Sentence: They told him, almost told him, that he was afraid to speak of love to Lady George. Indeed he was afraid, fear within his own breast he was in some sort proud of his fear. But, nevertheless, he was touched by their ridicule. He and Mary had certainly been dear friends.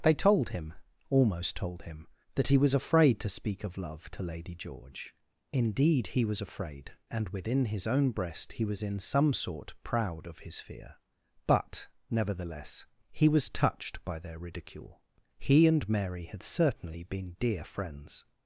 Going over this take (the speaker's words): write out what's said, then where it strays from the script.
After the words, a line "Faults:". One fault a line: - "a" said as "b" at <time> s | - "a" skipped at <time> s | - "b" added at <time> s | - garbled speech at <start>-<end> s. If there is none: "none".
They told him, almost told him, that he was afraid to speak of love to Lady George. Indeed he was afraid, and within his own breast he was in some sort proud of his fear. But, nevertheless, he was touched by their ridicule. He and Mary had certainly been dear friends.
Faults:
- "fear" said as "and" at 7.1 s